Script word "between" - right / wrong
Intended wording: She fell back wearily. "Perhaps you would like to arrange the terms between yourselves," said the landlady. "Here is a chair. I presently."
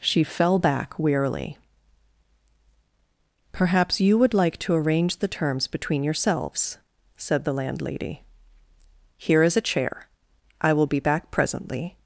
right